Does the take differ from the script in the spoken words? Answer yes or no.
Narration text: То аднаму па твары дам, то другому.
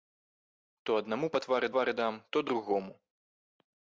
yes